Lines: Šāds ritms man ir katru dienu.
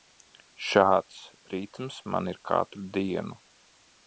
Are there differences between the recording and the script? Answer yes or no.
no